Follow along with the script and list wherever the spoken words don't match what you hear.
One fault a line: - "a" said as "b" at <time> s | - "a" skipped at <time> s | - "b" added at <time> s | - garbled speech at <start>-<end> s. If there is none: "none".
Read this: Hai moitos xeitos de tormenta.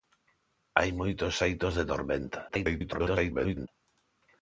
- garbled speech at 2.5-3.7 s